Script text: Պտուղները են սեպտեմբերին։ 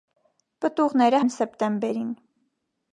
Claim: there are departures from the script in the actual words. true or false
false